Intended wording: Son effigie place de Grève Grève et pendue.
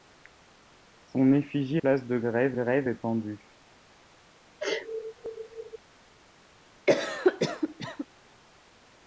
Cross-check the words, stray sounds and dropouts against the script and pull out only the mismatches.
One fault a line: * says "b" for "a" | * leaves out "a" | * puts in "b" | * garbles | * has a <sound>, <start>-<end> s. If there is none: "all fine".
* has a sneeze, 4.6-5.8 s
* has a cough, 6.9-8.1 s